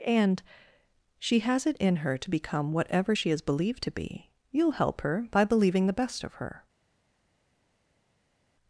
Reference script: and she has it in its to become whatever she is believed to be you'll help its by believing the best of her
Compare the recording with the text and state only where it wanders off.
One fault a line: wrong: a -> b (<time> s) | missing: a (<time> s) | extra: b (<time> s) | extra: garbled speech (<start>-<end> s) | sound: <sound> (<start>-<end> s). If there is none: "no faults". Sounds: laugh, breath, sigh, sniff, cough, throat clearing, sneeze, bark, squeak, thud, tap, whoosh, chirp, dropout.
wrong: its -> her (2.0 s)
wrong: its -> her (5.0 s)